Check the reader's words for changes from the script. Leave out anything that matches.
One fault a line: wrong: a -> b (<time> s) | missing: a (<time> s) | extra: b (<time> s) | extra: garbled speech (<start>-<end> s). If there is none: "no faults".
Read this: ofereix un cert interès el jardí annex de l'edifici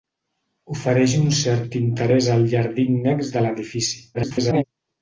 extra: garbled speech (4.1-4.6 s)